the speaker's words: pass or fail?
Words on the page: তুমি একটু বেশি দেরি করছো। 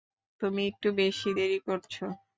pass